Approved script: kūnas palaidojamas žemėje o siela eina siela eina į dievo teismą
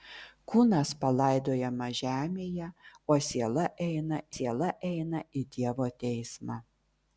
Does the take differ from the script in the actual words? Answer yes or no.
no